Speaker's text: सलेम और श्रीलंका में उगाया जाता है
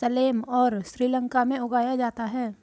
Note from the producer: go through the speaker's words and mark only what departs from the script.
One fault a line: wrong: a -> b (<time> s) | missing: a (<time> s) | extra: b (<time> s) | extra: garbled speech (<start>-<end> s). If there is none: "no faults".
no faults